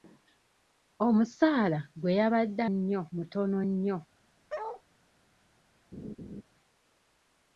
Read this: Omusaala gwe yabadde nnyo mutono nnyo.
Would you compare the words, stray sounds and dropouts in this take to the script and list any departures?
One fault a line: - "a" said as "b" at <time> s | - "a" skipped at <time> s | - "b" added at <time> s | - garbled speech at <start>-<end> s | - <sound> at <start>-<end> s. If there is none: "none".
- bark at 4.5-4.8 s
- laugh at 5.9-6.4 s